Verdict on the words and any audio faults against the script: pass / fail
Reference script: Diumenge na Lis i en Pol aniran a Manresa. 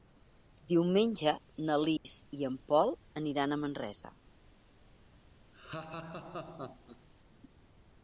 fail